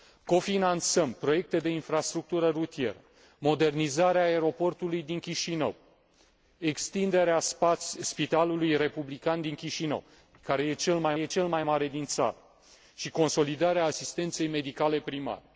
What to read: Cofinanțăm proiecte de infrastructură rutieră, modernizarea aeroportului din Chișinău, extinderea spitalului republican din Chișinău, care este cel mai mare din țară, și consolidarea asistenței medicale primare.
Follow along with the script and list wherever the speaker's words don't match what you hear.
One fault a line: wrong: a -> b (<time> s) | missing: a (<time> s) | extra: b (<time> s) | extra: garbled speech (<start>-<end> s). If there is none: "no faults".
extra: este cel mai (11.2 s)